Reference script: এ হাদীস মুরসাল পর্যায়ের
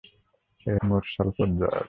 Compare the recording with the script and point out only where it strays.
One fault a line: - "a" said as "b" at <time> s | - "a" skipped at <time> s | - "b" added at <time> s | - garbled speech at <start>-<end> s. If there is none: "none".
- "হাদীস" skipped at 0.7 s